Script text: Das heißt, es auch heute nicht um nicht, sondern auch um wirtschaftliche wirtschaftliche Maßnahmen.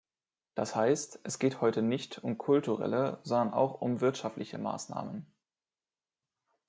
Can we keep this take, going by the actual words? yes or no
no